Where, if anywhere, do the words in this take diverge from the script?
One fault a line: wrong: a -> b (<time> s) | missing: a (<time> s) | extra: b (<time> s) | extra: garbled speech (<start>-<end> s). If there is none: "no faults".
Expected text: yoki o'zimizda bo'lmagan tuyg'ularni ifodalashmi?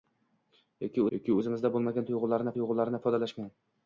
extra: yoki (1.2 s)
extra: tuyg'ularni (2.6 s)